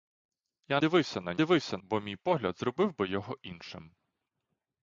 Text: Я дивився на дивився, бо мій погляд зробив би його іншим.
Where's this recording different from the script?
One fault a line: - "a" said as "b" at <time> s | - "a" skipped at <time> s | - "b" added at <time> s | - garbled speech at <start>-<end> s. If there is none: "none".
none